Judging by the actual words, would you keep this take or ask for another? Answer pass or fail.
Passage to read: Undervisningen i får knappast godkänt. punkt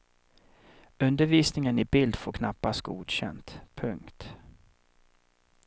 fail